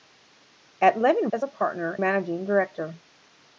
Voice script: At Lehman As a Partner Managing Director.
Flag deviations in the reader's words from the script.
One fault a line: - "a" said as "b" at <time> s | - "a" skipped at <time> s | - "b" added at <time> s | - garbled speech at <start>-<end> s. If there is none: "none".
none